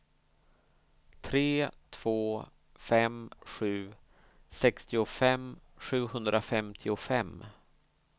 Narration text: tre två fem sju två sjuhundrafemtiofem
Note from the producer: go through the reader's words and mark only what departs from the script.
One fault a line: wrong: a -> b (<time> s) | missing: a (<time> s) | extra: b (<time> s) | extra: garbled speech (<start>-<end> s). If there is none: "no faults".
wrong: två -> sextiofem (4.5 s)